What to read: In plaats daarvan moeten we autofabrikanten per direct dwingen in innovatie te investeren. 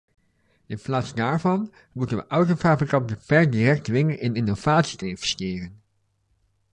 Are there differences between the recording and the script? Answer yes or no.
no